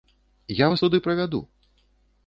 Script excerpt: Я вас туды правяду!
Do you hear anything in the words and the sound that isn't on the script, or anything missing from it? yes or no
no